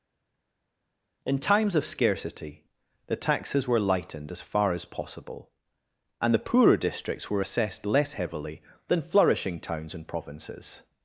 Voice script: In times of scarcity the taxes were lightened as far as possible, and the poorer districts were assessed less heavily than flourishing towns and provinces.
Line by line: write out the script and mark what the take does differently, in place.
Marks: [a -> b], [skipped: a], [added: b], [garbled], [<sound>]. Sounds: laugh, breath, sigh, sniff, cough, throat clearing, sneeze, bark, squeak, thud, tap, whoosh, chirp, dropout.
In times of scarcity the taxes were lightened as far as possible, and the poorer districts were assessed less heavily than flourishing towns and provinces.